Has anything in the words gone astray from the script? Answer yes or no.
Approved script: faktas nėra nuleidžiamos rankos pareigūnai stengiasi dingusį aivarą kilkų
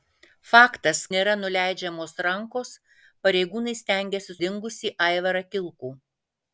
no